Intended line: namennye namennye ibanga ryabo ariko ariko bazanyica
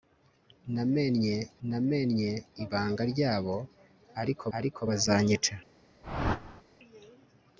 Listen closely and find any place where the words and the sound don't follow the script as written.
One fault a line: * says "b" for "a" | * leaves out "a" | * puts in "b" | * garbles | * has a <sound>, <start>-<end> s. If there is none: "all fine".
* has a whoosh, 6.0-6.6 s